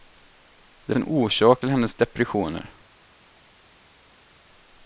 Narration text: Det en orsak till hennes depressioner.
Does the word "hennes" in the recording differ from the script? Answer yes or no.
no